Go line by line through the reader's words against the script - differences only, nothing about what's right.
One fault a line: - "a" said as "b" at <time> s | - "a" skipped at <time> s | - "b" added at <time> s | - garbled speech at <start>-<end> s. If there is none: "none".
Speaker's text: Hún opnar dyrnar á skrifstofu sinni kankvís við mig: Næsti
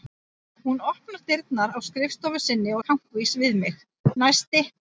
none